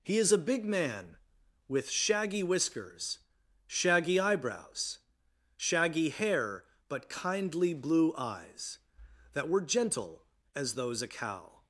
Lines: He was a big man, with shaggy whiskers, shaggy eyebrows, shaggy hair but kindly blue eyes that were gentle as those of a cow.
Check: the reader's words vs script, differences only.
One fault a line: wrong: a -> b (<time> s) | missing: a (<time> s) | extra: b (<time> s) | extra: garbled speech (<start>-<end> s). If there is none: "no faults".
wrong: was -> is (0.2 s)
missing: of (11.0 s)